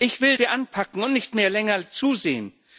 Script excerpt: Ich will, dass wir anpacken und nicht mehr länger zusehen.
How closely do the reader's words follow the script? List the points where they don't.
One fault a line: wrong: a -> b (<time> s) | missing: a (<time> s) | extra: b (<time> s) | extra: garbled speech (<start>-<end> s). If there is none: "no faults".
missing: dass (0.3 s)